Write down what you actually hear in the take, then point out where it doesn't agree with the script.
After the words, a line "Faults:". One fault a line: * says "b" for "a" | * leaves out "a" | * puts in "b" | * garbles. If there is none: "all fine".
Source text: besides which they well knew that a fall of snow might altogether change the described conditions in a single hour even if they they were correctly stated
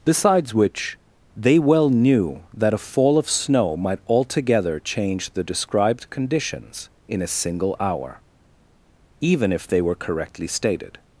besides which they well knew that a fall of snow might altogether change the described conditions in a single hour even if they were correctly stated
Faults:
* leaves out "they"